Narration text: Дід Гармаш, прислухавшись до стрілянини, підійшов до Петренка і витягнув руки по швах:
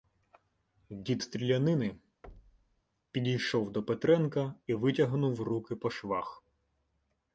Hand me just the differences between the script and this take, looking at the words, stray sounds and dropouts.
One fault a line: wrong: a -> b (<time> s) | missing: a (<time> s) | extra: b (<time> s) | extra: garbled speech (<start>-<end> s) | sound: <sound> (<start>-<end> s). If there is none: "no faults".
missing: Гармаш прислухавшись до (1.2 s)
sound: thud (2.2-2.8 s)